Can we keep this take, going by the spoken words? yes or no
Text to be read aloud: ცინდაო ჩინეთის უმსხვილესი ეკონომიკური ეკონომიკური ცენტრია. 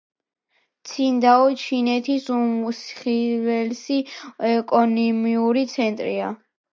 no